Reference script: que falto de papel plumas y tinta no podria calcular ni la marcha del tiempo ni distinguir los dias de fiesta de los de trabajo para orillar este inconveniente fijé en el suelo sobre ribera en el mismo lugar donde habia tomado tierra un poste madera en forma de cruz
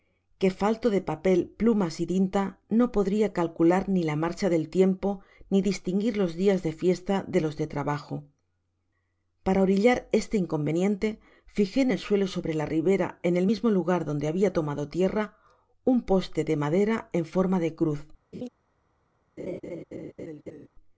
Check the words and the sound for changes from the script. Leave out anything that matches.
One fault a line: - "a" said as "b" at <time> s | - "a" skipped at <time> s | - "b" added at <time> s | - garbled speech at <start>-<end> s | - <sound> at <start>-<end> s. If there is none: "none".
- "la" added at 12.5 s
- "de" added at 16.4 s
- laugh at 18.3-18.5 s
- laugh at 19.4-20.7 s